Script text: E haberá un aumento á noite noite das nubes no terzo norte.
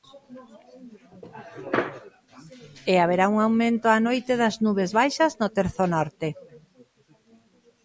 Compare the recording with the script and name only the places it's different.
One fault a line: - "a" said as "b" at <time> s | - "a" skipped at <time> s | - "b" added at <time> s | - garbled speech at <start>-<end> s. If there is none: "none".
- "noite" skipped at 4.3 s
- "baixas" added at 5.0 s